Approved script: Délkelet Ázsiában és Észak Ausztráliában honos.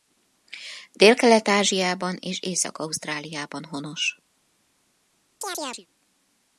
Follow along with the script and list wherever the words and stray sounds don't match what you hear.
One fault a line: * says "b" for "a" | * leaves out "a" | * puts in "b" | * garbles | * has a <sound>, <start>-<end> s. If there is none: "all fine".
* has a chirp, 5.4-5.9 s